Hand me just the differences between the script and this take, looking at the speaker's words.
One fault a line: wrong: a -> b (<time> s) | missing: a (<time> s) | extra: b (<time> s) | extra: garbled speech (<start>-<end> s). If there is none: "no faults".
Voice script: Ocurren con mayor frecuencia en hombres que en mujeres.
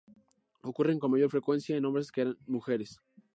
no faults